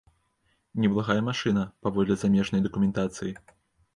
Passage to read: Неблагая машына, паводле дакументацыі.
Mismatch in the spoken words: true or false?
true